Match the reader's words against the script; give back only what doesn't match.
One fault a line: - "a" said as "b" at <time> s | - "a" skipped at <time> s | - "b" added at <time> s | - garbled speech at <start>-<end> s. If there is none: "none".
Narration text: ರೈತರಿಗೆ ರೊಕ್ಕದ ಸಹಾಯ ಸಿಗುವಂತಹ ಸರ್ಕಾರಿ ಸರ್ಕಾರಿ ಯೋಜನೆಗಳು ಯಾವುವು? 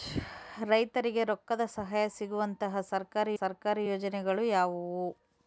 none